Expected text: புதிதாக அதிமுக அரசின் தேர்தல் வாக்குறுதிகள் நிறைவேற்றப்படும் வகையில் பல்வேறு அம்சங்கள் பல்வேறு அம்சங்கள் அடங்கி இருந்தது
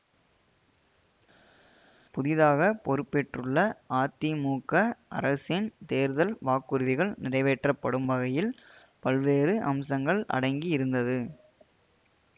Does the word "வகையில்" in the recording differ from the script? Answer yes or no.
no